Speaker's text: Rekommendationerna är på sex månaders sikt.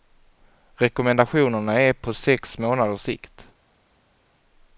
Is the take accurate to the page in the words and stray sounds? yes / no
yes